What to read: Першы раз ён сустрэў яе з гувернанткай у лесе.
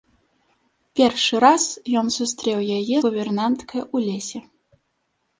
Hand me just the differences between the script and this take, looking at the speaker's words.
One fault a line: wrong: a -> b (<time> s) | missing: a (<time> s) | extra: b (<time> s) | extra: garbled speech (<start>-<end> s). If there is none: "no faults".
missing: з (3.0 s)